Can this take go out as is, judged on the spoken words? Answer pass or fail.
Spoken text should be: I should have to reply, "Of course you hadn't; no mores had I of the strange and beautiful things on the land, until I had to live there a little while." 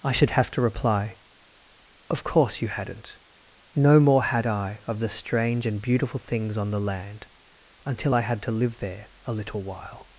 fail